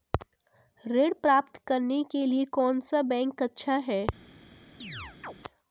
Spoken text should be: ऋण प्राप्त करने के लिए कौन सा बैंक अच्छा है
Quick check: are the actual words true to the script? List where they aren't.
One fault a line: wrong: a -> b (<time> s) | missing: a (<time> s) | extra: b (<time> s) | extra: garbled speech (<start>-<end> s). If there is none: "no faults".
no faults